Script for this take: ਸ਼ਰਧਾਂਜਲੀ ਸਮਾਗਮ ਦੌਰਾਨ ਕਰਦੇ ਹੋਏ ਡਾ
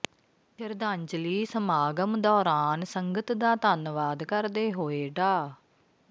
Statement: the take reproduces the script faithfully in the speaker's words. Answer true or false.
false